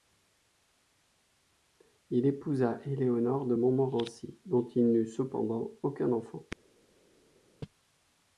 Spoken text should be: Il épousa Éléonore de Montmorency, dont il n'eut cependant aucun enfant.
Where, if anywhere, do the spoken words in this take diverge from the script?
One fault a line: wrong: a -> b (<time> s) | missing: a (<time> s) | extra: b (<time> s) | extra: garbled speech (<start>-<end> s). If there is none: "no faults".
no faults